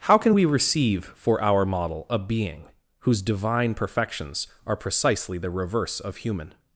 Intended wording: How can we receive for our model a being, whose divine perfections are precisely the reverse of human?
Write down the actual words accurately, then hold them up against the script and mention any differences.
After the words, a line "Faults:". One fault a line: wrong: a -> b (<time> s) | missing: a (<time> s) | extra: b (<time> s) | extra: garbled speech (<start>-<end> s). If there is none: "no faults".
How can we receive for our model a being, whose divine perfections are precisely the reverse of human?
Faults:
no faults